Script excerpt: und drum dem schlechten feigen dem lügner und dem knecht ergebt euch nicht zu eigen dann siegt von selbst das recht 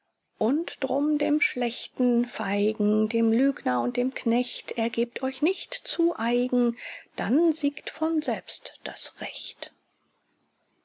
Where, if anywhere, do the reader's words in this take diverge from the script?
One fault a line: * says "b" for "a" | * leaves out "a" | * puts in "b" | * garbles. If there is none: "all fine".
all fine